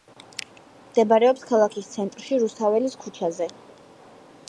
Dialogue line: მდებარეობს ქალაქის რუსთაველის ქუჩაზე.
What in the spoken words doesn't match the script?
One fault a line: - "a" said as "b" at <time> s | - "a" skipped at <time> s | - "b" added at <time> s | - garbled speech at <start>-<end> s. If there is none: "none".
- "ცენტრში" added at 2.0 s